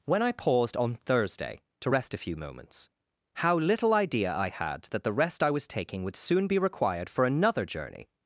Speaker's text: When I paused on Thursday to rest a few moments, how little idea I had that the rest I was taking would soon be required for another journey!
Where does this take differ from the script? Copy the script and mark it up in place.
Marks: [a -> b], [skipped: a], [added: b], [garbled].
When I paused on Thursday to rest a few moments, how little idea I had that the rest I was taking would soon be required for another journey!